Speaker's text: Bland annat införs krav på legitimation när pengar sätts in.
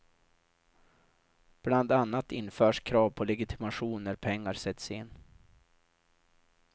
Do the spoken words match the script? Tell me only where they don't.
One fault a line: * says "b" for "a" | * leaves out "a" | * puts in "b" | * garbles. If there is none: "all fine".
all fine